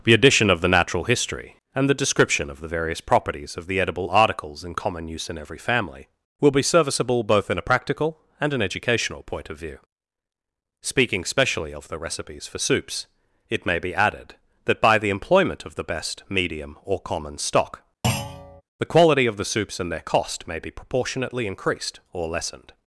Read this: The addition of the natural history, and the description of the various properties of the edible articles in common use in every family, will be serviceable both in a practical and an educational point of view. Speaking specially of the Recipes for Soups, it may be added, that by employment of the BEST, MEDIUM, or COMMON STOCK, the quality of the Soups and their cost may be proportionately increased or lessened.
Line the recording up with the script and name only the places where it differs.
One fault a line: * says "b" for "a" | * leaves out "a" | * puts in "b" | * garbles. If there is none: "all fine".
* puts in "the"